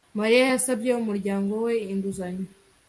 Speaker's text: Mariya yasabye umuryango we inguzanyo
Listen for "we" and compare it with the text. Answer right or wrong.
right